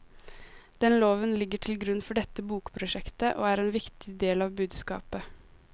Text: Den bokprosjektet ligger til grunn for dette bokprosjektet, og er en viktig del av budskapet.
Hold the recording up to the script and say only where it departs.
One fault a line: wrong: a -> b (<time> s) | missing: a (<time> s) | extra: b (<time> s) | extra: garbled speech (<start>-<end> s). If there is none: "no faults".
wrong: bokprosjektet -> loven (1.0 s)